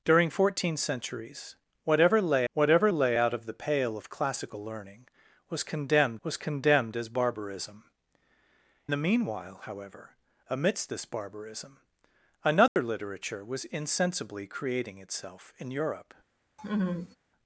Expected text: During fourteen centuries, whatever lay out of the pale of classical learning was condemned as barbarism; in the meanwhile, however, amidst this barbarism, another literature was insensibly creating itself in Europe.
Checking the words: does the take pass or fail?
fail